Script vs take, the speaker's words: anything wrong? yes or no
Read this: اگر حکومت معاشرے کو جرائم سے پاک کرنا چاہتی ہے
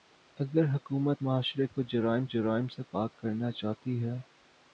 yes